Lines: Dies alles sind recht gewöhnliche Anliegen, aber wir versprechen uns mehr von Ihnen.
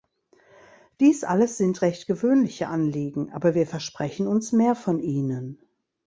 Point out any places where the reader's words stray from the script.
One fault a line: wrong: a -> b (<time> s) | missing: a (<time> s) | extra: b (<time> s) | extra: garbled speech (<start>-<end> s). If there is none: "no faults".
no faults